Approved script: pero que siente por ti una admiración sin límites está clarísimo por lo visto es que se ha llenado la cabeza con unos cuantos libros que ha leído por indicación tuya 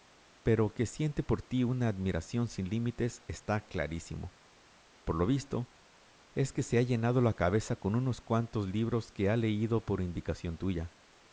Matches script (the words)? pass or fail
pass